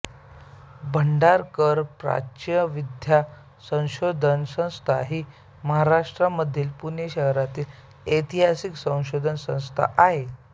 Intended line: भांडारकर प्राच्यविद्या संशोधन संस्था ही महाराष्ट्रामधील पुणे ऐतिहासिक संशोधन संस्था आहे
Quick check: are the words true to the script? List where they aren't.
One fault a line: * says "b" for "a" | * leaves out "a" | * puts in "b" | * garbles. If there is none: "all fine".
* puts in "शहरातील"